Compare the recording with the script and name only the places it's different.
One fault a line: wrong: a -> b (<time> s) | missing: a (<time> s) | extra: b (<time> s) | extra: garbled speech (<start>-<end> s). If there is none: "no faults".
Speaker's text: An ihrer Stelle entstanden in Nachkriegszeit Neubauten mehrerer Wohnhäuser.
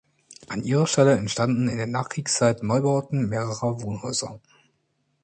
extra: der (1.8 s)